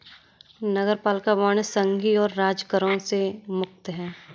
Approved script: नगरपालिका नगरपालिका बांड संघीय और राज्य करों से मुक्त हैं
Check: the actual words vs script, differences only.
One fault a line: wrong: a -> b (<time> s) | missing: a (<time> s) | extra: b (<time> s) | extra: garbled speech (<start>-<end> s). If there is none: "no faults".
missing: नगरपालिका (1.4 s)